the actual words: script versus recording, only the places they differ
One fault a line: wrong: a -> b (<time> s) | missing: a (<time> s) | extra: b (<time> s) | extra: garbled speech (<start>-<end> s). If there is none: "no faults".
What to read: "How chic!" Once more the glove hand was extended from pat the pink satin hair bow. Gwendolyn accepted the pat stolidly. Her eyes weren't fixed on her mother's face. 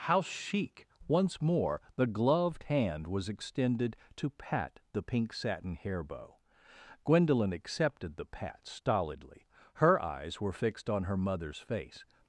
wrong: glove -> gloved (2.1 s)
wrong: from -> to (4.2 s)
wrong: weren't -> were (10.4 s)